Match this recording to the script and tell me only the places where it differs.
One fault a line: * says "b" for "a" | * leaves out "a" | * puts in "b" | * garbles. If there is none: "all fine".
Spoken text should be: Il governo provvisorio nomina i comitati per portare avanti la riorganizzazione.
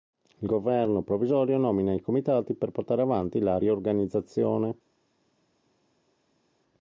all fine